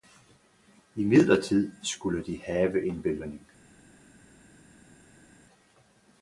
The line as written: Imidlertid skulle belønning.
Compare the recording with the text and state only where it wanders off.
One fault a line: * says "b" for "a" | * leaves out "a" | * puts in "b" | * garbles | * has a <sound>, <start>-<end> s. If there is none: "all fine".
* puts in "de have en"